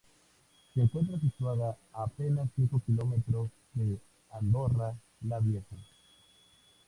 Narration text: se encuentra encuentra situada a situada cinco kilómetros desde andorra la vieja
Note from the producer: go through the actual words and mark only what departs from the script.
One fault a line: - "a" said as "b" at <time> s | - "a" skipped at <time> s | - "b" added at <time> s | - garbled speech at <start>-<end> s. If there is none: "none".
- "encuentra" skipped at 1.2 s
- "situada" said as "apenas" at 2.0 s
- "desde" said as "de" at 3.8 s